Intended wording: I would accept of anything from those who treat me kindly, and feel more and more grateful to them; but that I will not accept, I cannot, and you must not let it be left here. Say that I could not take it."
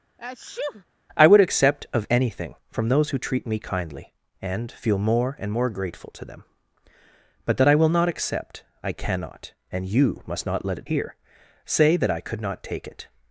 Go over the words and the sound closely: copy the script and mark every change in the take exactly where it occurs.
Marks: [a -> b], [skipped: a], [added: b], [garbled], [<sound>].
[sneeze] I would accept of anything from those who treat me kindly, and feel more and more grateful to them; but that I will not accept, I cannot, and you must not let it [skipped: be left] here. Say that I could not take it."